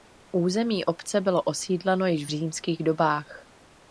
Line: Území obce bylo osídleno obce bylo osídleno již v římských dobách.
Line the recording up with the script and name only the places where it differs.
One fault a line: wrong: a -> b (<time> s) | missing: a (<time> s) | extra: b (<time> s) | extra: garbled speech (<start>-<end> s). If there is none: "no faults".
missing: obce bylo osídleno (2.1 s)